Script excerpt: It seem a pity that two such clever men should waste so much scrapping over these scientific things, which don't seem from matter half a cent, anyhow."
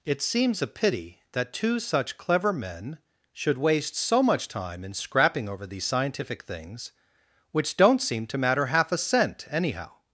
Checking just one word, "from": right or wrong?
wrong